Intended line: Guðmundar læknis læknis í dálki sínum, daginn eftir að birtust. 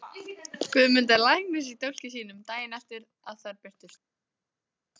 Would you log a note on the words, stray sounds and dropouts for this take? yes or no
yes